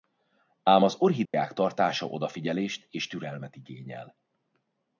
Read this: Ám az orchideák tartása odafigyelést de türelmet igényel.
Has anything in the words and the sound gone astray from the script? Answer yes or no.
yes